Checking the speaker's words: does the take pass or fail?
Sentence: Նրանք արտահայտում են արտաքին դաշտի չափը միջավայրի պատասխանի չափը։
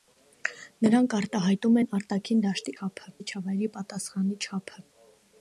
pass